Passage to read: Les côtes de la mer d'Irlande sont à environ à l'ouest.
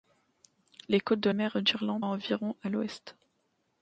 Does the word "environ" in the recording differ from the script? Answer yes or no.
no